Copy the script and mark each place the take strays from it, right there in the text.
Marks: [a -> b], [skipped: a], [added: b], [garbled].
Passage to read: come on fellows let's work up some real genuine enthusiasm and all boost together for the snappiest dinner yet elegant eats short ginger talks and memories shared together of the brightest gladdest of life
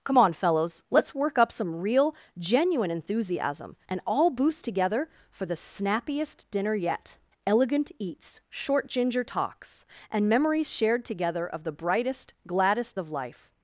come on fellows let's work up some real genuine enthusiasm and all boost together for the snappiest dinner yet elegant eats short ginger talks and memories shared together of the brightest gladdest of life